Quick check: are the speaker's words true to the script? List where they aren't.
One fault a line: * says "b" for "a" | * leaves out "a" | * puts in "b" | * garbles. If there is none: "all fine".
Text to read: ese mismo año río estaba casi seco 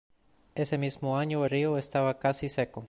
all fine